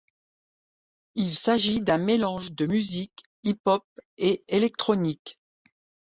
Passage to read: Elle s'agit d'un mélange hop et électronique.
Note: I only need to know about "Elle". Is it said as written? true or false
false